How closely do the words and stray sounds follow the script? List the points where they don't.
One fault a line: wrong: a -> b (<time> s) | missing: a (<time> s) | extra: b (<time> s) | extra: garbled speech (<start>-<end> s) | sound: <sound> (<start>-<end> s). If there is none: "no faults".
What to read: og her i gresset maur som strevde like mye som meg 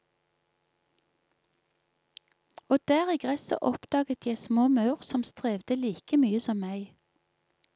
wrong: her -> der (2.9 s)
extra: oppdaget jeg små (3.6 s)